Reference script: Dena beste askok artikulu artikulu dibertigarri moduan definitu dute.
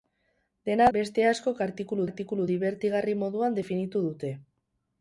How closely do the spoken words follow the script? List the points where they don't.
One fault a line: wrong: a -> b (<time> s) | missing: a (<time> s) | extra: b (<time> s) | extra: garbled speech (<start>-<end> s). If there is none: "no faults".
no faults